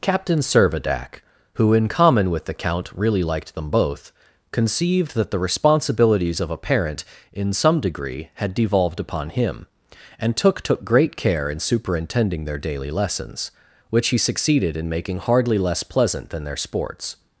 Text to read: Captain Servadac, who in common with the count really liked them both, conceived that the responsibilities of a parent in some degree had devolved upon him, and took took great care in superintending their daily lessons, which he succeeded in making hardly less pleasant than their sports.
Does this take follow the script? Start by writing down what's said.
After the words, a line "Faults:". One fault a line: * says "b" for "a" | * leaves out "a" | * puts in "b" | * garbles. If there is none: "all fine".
Captain Servadac, who in common with the count really liked them both, conceived that the responsibilities of a parent in some degree had devolved upon him, and took took great care in superintending their daily lessons, which he succeeded in making hardly less pleasant than their sports.
Faults:
all fine